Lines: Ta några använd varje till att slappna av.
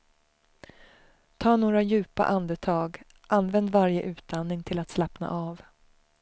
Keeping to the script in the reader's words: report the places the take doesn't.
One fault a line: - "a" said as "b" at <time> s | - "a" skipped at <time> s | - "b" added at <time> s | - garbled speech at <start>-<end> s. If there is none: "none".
- "djupa andetag" added at 1.8 s
- "utandning" added at 4.0 s